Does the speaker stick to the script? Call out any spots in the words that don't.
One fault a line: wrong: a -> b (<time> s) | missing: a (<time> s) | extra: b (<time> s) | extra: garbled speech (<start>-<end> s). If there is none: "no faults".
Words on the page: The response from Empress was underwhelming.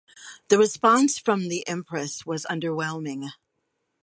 extra: the (1.5 s)